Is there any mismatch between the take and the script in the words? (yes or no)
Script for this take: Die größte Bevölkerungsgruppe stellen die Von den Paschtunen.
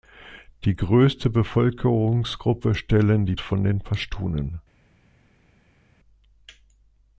no